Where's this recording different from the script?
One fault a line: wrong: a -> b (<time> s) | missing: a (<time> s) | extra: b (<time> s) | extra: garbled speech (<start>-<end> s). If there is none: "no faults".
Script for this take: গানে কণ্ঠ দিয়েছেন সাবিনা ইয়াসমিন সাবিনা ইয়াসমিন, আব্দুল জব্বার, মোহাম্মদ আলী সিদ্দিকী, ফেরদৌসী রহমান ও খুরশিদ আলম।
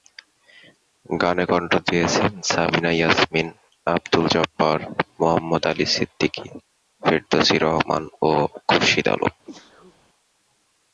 missing: সাবিনা ইয়াসমিন (3.5 s)